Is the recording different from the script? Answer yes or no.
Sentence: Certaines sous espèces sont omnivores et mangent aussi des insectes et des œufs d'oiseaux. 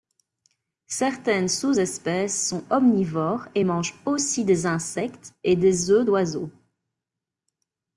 no